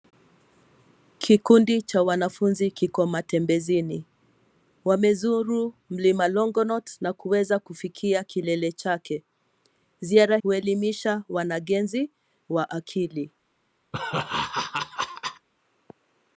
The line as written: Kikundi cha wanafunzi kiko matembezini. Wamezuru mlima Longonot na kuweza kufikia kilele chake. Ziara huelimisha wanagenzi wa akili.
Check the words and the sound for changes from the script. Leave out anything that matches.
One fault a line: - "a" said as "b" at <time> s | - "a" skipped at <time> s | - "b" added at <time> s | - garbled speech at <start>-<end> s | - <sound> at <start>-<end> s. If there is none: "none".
- laugh at 13.9-15.5 s